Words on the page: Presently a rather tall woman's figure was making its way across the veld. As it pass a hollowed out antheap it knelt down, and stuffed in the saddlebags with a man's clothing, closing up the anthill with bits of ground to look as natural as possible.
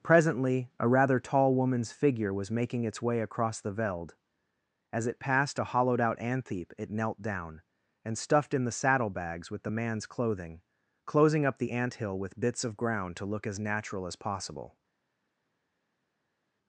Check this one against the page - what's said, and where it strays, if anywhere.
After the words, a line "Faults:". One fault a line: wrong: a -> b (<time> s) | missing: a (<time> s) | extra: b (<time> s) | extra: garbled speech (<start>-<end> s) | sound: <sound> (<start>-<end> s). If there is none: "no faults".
Presently a rather tall woman's figure was making its way across the veld. As it passed a hollowed out antheap it knelt down, and stuffed in the saddlebags with the man's clothing, closing up the anthill with bits of ground to look as natural as possible.
Faults:
wrong: pass -> passed (5.2 s)
wrong: a -> the (9.6 s)